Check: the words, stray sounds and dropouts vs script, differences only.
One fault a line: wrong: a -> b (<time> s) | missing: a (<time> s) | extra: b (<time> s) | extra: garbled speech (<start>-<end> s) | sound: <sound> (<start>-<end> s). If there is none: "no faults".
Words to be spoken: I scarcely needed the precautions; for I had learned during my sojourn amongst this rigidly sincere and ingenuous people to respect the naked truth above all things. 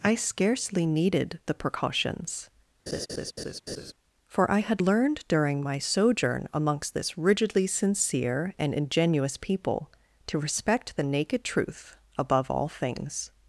sound: laugh (2.9-3.9 s)